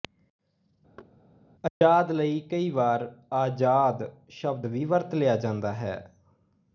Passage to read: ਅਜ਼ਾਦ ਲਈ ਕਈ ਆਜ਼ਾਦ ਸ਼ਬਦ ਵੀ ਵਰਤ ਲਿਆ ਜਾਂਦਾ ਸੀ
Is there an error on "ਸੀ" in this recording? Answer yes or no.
yes